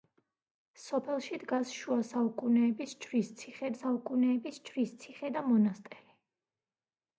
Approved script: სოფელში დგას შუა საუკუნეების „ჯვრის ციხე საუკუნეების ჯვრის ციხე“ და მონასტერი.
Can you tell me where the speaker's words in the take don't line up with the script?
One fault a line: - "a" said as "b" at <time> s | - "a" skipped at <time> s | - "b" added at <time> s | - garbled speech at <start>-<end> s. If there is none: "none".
none